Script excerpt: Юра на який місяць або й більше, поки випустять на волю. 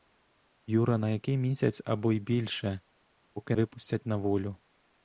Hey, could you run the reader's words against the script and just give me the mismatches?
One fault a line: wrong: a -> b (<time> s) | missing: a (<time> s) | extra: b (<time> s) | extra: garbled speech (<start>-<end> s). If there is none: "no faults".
no faults